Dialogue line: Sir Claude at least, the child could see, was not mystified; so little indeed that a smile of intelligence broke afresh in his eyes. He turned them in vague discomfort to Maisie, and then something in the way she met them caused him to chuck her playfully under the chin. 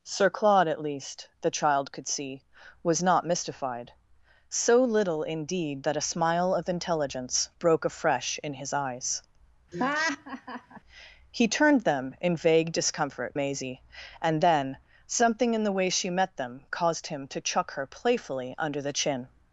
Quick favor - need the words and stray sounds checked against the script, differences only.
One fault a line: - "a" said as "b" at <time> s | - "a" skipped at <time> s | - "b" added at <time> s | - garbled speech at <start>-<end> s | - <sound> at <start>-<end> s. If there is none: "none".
- laugh at 9.7-10.8 s
- "to" skipped at 13.4 s